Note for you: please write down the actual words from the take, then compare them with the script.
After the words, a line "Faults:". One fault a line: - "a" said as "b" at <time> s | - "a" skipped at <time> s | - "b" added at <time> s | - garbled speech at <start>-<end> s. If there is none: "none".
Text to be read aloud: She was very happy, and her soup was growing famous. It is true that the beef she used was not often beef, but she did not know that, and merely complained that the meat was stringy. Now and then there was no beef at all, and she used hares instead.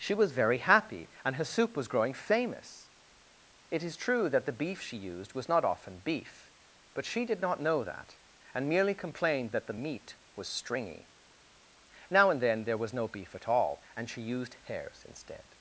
She was very happy, and her soup was growing famous. It is true that the beef she used was not often beef, but she did not know that, and merely complained that the meat was stringy. Now and then there was no beef at all, and she used hares instead.
Faults:
none